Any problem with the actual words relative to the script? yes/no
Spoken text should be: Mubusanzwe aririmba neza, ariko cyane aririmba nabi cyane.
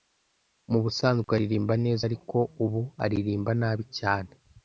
yes